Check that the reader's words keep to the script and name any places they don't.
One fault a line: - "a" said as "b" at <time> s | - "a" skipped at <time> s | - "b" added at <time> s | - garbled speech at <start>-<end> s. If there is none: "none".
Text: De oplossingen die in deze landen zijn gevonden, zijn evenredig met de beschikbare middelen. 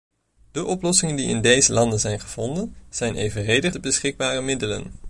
- "met" skipped at 3.8 s